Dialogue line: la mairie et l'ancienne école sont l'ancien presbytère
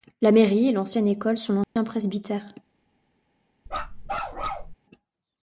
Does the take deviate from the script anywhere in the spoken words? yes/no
no